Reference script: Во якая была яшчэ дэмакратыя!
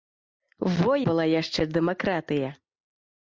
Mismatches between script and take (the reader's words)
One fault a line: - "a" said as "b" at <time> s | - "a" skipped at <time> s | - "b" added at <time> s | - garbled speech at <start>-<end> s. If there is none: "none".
- "якая" skipped at 0.9 s